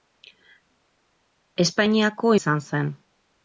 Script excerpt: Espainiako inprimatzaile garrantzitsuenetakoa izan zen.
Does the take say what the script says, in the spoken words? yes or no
no